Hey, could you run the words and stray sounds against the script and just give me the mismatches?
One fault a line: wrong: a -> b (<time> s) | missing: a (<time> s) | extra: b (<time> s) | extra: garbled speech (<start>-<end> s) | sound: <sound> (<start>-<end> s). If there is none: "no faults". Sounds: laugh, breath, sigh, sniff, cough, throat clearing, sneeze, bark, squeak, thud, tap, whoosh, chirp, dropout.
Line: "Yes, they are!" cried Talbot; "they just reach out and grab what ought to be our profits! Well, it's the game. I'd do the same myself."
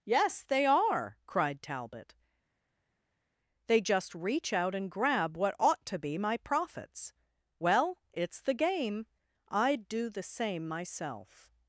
wrong: our -> my (6.2 s)